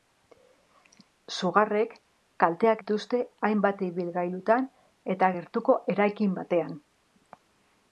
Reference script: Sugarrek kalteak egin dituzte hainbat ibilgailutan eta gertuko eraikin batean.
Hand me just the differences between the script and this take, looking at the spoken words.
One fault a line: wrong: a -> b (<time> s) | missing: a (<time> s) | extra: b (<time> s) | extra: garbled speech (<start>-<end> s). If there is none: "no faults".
missing: egin (2.8 s)